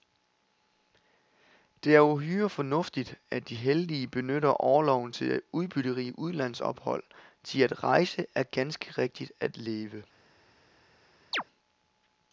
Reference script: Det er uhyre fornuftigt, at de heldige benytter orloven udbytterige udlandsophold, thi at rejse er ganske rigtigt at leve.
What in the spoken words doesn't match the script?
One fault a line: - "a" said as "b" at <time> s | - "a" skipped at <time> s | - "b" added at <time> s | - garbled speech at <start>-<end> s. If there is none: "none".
- "til" added at 5.1 s